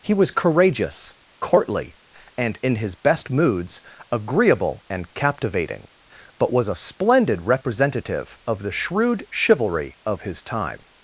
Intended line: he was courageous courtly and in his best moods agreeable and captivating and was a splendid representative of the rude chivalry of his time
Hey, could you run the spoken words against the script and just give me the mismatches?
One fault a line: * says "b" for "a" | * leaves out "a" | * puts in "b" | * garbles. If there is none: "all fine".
* says "but" for "and"
* says "shrewd" for "rude"